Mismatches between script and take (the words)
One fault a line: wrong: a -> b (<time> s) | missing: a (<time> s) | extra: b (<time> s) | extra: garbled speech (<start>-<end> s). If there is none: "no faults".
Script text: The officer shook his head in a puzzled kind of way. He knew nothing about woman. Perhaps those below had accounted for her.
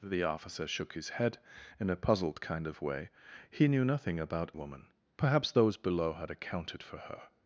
no faults